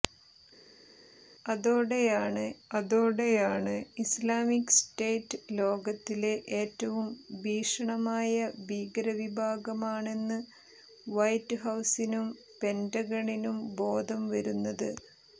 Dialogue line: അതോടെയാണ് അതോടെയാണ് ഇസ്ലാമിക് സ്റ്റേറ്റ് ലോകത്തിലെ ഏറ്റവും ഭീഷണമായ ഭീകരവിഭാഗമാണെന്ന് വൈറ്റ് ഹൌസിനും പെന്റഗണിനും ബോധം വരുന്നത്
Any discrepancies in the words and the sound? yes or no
no